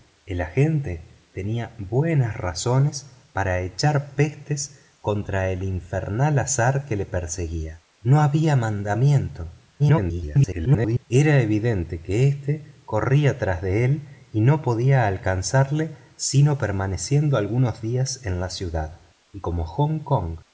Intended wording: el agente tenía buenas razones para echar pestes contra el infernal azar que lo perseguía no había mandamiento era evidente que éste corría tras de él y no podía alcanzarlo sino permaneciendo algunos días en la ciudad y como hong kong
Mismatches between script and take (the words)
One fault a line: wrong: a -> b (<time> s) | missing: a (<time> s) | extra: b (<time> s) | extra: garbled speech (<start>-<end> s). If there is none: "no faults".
extra: garbled speech (9.8-11.1 s)